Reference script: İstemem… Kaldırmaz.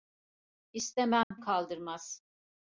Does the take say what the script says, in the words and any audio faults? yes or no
no